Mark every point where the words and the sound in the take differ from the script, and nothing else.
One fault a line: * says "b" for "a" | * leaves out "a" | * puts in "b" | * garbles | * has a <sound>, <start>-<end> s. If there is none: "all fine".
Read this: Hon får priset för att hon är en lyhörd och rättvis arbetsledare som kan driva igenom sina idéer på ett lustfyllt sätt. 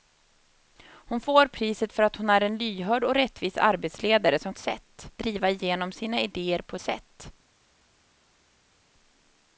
* says "sätt" for "kan"
* leaves out "ett lustfyllt"